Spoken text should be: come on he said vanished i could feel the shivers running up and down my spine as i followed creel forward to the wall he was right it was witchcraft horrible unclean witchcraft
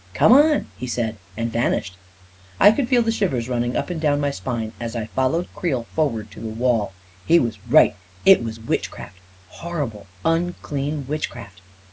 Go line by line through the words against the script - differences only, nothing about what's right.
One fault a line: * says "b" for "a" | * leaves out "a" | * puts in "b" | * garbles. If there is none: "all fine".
* puts in "and"